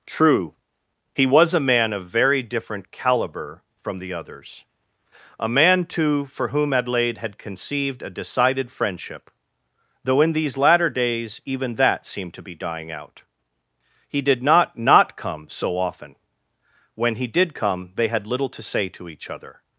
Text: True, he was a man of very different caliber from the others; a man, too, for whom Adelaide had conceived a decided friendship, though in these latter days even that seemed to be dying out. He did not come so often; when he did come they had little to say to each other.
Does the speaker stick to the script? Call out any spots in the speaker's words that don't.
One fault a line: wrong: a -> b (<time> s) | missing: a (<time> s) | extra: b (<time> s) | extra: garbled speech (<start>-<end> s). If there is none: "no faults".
extra: not (14.8 s)